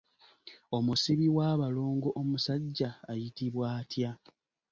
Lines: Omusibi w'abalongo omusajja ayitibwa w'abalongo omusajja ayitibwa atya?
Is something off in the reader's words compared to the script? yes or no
yes